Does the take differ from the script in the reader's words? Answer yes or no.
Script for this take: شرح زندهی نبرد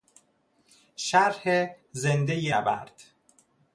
no